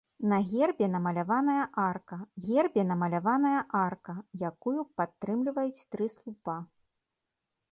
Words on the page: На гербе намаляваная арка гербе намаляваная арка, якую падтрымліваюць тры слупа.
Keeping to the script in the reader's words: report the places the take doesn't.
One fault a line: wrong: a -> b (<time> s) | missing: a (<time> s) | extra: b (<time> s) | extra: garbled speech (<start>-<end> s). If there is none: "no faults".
no faults